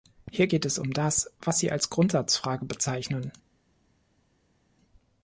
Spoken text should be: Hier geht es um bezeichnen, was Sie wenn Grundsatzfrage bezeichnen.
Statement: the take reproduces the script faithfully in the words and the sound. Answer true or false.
false